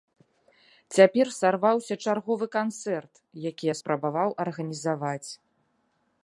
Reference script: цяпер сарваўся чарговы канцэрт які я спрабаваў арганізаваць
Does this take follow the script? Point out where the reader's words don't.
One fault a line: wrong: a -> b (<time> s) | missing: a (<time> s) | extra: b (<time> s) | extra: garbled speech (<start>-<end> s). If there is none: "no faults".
no faults